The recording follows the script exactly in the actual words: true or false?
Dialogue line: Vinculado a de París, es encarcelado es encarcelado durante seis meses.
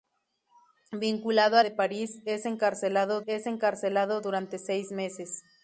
true